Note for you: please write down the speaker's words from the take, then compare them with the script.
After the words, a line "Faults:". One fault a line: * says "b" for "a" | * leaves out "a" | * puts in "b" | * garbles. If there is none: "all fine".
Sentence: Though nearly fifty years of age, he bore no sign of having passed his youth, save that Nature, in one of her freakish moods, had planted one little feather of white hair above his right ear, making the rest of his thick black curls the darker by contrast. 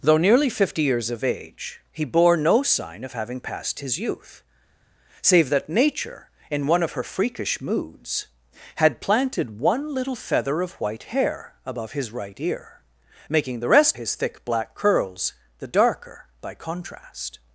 Though nearly fifty years of age, he bore no sign of having passed his youth, save that Nature, in one of her freakish moods, had planted one little feather of white hair above his right ear, making the rest his thick black curls the darker by contrast.
Faults:
* leaves out "of"